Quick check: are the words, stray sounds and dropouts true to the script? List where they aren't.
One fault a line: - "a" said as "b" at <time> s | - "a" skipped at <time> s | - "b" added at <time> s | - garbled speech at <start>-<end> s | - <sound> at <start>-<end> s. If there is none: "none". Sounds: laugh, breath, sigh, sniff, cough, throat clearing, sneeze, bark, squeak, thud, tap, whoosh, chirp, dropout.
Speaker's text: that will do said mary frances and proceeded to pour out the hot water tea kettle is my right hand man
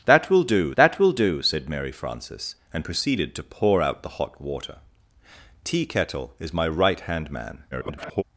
- "that will do" added at 0.8 s
- garbled speech at 7.7-8.2 s